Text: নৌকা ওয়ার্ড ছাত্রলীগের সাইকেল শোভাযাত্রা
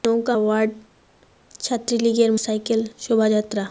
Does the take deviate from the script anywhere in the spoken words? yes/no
no